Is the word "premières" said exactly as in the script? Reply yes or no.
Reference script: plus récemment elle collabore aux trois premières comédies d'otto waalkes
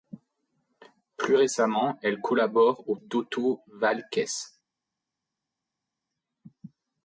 no